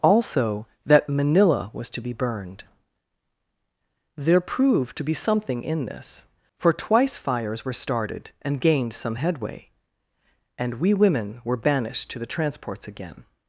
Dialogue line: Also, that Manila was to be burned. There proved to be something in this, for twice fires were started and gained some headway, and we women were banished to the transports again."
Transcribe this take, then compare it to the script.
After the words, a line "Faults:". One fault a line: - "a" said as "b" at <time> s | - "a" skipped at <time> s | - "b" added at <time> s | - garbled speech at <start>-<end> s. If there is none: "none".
Also, that Manila was to be burned. There proved to be something in this, for twice fires were started and gained some headway, and we women were banished to the transports again."
Faults:
none